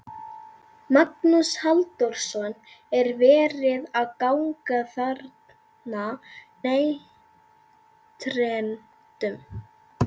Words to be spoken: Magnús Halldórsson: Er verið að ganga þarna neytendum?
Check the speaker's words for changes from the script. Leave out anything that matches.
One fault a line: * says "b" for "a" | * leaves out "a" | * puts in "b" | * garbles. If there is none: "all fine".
all fine